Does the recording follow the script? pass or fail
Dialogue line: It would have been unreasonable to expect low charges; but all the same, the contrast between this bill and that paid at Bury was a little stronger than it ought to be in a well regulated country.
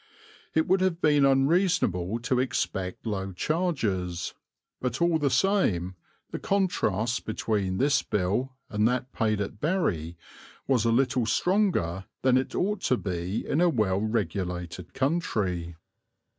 pass